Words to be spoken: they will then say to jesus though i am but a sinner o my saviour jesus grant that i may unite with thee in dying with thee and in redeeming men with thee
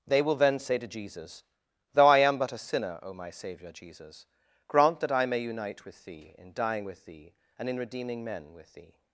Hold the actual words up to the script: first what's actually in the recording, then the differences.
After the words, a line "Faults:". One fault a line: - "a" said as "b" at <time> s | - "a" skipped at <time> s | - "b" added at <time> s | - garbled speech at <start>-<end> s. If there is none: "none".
they will then say to jesus though i am but a sinner o my saviour jesus grant that i may unite with thee in dying with thee and in redeeming men with thee
Faults:
none